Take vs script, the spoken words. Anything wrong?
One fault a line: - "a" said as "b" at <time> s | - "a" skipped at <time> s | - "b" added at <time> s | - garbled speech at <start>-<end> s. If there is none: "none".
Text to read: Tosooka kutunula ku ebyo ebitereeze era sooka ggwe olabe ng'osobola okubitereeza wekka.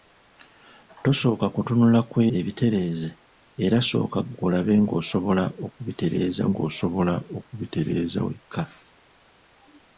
- "ebyo" skipped at 2.2 s
- "ng'osobola okubitereeza" added at 6.5 s